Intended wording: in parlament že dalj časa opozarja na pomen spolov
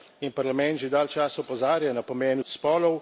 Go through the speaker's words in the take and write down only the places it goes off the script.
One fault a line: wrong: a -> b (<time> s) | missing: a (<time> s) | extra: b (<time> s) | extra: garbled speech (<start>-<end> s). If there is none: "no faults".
no faults